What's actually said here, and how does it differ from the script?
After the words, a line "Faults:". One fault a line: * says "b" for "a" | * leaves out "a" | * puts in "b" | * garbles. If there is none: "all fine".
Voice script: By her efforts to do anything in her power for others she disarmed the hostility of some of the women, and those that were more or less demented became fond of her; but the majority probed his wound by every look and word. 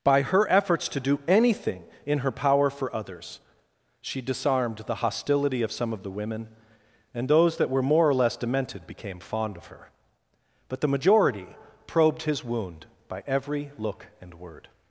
By her efforts to do anything in her power for others she disarmed the hostility of some of the women, and those that were more or less demented became fond of her; but the majority probed his wound by every look and word.
Faults:
all fine